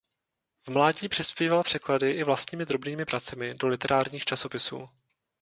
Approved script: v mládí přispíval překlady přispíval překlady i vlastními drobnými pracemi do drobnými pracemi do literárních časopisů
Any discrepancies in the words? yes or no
yes